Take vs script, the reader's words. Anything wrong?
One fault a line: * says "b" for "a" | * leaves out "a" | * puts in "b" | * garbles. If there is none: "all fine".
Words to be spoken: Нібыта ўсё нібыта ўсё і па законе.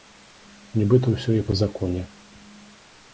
* leaves out "нібыта ўсё"